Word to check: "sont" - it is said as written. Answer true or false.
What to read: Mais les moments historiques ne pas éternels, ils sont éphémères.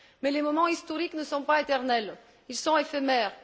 true